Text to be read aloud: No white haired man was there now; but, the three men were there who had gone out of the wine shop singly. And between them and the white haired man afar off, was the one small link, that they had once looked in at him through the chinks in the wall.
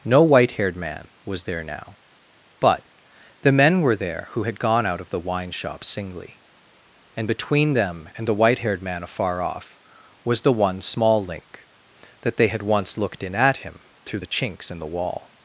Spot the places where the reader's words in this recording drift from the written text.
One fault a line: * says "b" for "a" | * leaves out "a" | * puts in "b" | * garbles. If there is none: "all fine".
* leaves out "three"